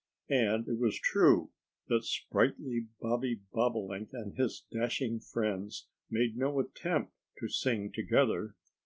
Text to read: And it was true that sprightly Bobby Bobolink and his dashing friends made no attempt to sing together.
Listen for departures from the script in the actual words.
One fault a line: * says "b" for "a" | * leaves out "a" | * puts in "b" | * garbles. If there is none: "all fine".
all fine